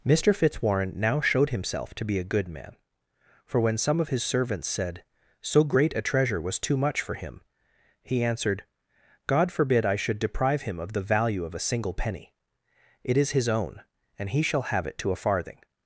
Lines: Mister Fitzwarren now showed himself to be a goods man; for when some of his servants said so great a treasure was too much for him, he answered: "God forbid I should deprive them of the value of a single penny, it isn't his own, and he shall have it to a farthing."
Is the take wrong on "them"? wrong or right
wrong